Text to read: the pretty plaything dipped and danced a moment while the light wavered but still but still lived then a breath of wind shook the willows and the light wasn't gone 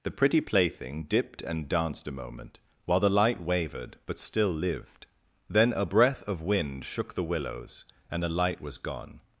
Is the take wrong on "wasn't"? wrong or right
wrong